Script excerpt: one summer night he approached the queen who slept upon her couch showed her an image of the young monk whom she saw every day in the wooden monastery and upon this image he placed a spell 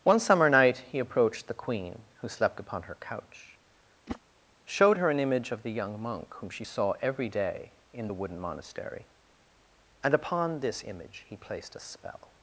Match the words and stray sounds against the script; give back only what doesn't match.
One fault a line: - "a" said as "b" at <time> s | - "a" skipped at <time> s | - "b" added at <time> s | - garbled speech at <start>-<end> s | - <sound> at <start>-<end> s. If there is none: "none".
- whoosh at 4.1-4.2 s